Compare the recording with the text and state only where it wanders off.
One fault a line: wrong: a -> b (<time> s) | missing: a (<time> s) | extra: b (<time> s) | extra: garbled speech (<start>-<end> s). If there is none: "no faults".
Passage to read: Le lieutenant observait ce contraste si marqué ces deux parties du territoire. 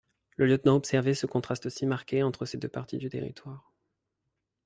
extra: entre (2.2 s)